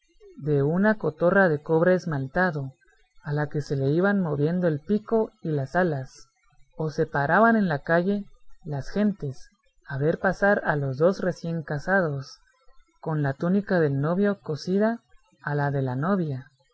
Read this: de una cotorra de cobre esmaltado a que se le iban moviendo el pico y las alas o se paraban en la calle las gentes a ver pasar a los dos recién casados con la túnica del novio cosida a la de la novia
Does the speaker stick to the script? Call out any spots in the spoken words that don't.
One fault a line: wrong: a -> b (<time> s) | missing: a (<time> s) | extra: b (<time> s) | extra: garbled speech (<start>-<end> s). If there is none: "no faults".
extra: la (3.3 s)